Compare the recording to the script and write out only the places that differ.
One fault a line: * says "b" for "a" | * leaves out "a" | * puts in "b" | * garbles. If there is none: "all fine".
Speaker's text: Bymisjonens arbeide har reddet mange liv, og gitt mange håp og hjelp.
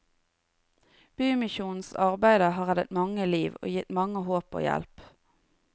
all fine